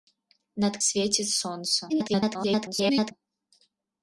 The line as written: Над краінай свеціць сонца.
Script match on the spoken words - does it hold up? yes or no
no